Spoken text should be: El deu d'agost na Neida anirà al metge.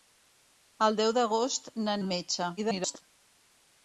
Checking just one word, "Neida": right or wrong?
wrong